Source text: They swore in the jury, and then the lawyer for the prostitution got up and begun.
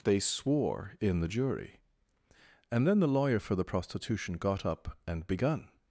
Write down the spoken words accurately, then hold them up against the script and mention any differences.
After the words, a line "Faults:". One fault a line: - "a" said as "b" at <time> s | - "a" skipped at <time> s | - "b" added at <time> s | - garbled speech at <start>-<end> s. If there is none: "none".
They swore in the jury, and then the lawyer for the prostitution got up and begun.
Faults:
none